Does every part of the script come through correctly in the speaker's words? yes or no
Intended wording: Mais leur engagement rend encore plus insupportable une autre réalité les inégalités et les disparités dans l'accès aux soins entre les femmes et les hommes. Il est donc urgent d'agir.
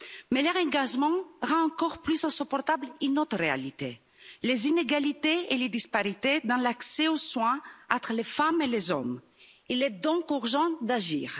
yes